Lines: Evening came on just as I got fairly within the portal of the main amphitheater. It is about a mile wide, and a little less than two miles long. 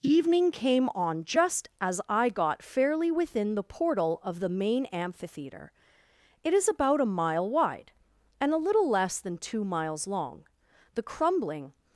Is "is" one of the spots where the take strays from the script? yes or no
no